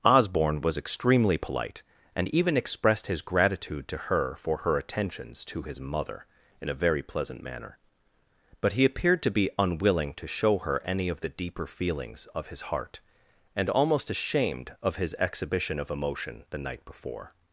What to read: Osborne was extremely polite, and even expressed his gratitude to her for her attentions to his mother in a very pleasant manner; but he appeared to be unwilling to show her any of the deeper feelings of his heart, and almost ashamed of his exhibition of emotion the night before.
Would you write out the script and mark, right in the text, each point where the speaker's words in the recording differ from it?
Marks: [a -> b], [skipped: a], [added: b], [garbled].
Osborne was extremely polite, and even expressed his gratitude to her for her attentions to his mother in a very pleasant manner; but he appeared to be unwilling to show her any of the deeper feelings of his heart, and almost ashamed of his exhibition of emotion the night before.